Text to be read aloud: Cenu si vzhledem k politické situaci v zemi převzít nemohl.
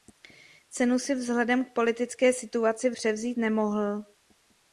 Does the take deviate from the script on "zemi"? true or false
true